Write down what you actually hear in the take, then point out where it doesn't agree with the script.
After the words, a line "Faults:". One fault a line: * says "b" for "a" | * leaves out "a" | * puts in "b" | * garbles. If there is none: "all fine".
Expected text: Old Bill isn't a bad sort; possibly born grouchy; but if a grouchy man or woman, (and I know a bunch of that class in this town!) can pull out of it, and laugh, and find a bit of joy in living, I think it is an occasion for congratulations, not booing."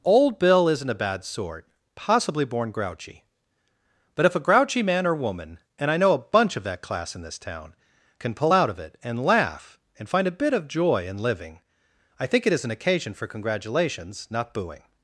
Old Bill isn't a bad sort; possibly born grouchy; but if a grouchy man or woman, (and I know a bunch of that class in this town!) can pull out of it, and laugh, and find a bit of joy in living, I think it is an occasion for congratulations, not booing."
Faults:
all fine